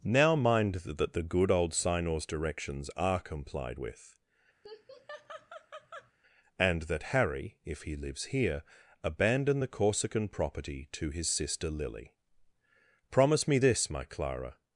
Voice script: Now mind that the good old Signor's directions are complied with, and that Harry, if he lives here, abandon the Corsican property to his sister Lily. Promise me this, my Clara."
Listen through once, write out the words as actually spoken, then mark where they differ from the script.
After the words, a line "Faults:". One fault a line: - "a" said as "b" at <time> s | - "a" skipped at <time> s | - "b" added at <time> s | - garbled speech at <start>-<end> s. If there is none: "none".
Now mind that the good old Signor's directions are complied with, and that Harry, if he lives here, abandon the Corsican property to his sister Lily. Promise me this, my Clara."
Faults:
none